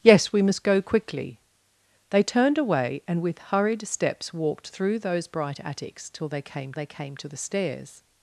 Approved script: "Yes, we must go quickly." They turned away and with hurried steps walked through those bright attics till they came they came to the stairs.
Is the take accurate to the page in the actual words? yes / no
yes